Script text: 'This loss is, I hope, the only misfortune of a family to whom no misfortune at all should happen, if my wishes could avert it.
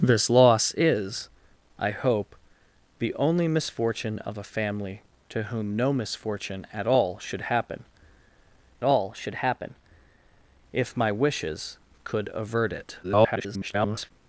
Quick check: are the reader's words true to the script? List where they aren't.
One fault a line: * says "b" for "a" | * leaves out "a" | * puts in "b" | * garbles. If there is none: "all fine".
* puts in "all should happen"
* garbles